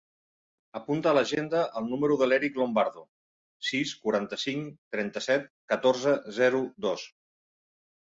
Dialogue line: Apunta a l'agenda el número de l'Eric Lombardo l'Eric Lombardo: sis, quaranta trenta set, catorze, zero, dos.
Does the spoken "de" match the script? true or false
true